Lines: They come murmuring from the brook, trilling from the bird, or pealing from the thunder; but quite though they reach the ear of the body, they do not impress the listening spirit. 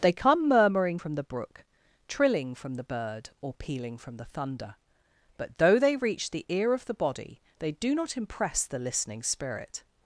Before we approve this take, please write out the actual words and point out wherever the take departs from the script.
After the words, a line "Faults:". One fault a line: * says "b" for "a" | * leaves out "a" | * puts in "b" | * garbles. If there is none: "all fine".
They come murmuring from the brook, trilling from the bird, or pealing from the thunder; but though they reach the ear of the body, they do not impress the listening spirit.
Faults:
* leaves out "quite"